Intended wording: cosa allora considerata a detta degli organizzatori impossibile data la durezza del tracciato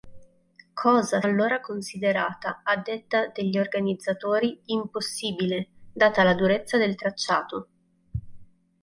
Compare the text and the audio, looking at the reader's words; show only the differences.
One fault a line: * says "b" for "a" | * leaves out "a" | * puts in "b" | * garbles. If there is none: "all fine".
all fine